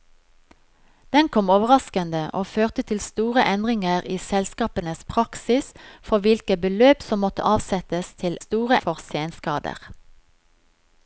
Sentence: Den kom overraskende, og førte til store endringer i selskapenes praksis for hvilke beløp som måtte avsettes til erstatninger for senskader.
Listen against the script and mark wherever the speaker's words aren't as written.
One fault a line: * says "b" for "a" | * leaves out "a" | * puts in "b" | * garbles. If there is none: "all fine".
* says "store" for "erstatninger"